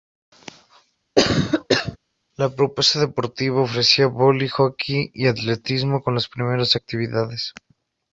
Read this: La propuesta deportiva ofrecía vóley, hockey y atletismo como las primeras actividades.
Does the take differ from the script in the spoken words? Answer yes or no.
no